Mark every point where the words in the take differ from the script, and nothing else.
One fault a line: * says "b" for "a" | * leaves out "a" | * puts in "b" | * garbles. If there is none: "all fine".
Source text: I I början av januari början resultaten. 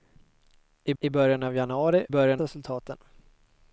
all fine